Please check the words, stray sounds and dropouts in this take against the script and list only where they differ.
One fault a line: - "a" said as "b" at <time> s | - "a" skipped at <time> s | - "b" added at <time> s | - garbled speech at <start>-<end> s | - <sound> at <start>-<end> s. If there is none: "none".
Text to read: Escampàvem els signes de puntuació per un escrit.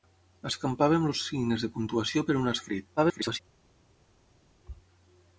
- garbled speech at 3.0-3.4 s